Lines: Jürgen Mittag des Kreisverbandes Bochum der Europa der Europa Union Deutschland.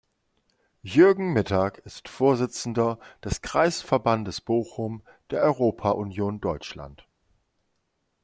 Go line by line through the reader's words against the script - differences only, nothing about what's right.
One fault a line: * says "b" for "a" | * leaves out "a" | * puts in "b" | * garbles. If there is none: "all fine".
* puts in "ist Vorsitzender"
* leaves out "der Europa"